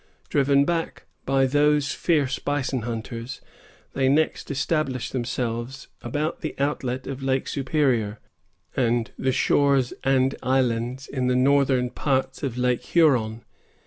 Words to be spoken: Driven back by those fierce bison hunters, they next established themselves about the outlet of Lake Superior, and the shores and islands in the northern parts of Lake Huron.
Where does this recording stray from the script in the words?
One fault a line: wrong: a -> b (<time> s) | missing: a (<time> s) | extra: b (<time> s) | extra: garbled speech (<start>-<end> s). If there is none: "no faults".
no faults